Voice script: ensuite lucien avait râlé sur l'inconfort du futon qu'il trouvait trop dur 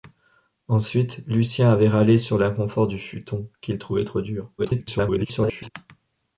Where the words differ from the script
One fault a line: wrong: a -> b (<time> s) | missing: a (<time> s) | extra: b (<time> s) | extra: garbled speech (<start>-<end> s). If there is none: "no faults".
extra: garbled speech (4.6-5.7 s)